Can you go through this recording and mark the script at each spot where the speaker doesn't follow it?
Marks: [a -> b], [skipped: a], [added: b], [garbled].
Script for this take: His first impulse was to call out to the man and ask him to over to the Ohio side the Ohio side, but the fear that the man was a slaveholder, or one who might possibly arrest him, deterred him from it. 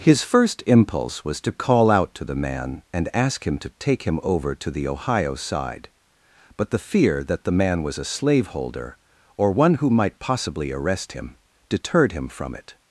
His first impulse was to call out to the man and ask him to [added: take him] over to the Ohio side [skipped: the Ohio side,] but the fear that the man was a slaveholder, or one who might possibly arrest him, deterred him from it.